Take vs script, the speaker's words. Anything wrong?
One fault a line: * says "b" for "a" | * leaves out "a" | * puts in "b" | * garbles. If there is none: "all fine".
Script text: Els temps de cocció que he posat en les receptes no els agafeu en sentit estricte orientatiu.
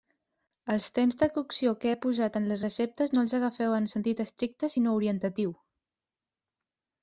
* puts in "sinó"